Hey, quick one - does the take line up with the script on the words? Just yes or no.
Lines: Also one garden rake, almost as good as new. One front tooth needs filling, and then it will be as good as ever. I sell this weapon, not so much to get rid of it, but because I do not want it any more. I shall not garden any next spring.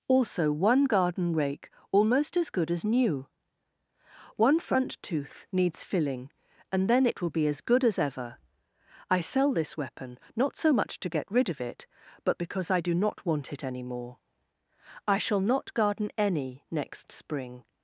yes